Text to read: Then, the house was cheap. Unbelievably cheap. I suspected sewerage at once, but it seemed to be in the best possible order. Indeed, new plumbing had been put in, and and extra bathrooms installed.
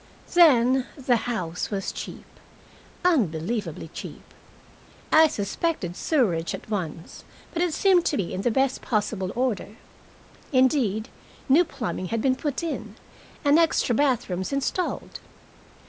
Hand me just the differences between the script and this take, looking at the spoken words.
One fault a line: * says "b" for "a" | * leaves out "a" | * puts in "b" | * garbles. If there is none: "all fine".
* leaves out "and"